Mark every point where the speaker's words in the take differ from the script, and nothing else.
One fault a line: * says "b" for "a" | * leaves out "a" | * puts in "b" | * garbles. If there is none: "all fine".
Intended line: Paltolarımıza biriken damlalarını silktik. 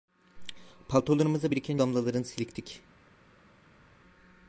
all fine